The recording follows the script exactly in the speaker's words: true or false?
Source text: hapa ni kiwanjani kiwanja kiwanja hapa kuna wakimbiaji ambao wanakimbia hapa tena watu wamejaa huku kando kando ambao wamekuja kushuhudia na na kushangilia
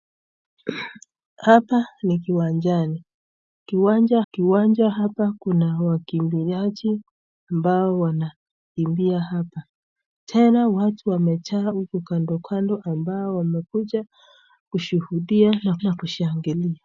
true